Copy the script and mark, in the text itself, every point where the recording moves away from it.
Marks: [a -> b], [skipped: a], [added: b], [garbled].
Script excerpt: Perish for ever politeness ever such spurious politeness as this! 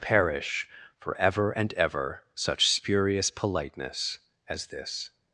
Perish for ever [politeness -> and] ever such spurious politeness as this!